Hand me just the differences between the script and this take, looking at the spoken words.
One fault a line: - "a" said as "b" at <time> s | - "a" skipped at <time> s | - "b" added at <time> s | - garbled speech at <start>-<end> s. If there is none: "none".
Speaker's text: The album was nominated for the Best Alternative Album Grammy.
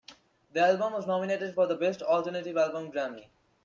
none